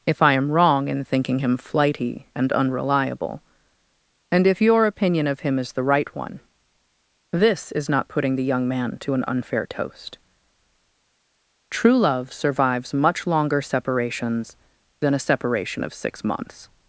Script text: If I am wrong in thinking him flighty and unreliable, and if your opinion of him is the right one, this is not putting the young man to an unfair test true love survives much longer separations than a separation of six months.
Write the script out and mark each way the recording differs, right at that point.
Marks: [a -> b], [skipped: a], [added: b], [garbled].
If I am wrong in thinking him flighty and unreliable, and if your opinion of him is the right one, this is not putting the young man to an unfair [test -> toast] true love survives much longer separations than a separation of six months.